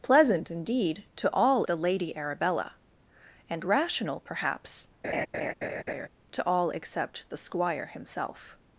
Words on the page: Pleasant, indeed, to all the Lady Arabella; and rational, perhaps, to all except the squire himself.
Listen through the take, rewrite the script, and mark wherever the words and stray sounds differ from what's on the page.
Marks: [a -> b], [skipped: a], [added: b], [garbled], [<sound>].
Pleasant, indeed, to all the Lady Arabella; and rational, perhaps, [laugh] to all except the squire himself.